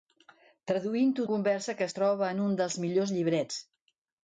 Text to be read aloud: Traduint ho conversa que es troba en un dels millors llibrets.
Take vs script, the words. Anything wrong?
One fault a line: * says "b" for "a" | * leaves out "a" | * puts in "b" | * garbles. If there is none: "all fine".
all fine